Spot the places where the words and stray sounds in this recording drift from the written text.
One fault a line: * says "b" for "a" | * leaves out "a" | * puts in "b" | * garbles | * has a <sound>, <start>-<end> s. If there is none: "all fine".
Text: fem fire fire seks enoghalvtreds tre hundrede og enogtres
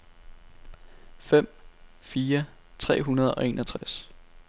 * leaves out "fire seks enoghalvtreds"
* has a dropout, 3.8-3.8 s